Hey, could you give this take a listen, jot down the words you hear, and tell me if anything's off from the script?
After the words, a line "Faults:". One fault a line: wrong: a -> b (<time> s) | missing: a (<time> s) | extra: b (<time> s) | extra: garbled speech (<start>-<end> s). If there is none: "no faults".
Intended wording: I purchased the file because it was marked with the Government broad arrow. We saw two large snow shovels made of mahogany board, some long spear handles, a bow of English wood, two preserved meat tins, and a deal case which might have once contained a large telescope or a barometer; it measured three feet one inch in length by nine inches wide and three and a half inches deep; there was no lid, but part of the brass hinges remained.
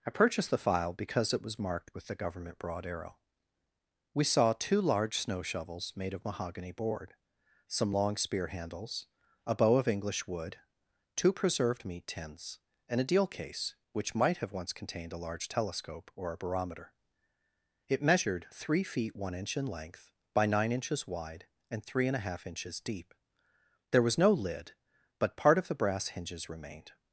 I purchased the file because it was marked with the Government broad arrow. We saw two large snow shovels made of mahogany board, some long spear handles, a bow of English wood, two preserved meat tins, and a deal case which might have once contained a large telescope or a barometer; it measured three feet one inch in length by nine inches wide and three and a half inches deep; there was no lid, but part of the brass hinges remained.
Faults:
no faults